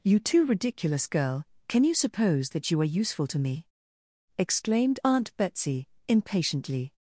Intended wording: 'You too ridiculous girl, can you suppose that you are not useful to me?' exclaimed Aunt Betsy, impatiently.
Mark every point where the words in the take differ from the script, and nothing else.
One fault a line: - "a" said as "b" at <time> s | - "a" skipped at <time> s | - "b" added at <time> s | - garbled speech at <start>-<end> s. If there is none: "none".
- "not" skipped at 3.0 s